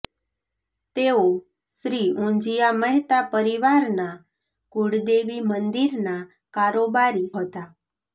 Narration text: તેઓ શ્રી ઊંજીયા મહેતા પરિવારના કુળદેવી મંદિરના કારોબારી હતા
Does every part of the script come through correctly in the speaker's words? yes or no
yes